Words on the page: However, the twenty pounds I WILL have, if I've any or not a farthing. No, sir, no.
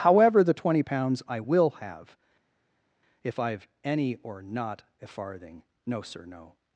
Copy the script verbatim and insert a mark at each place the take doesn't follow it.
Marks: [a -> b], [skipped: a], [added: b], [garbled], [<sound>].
However, the twenty pounds I WILL have, if I've any or not a farthing. No, sir, no.